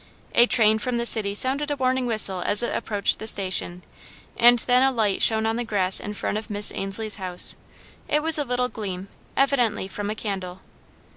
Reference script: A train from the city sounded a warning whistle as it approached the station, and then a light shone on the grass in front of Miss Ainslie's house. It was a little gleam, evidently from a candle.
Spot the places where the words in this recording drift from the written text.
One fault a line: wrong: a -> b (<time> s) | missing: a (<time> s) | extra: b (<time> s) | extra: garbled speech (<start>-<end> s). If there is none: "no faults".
no faults